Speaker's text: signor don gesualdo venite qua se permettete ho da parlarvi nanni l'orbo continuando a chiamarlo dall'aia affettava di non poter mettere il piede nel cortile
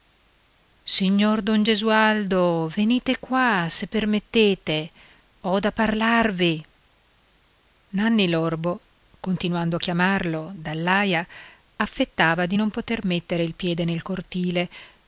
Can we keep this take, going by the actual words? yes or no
yes